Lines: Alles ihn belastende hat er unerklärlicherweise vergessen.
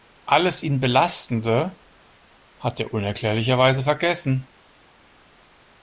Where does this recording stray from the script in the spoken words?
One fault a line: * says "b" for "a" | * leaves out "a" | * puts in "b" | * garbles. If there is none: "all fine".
all fine